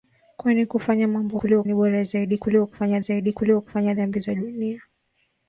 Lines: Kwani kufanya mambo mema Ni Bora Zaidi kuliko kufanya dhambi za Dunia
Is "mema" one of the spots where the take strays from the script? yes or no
yes